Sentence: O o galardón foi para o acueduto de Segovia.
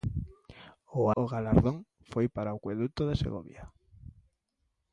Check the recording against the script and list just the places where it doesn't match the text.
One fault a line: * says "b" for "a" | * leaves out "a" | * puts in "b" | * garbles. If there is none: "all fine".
all fine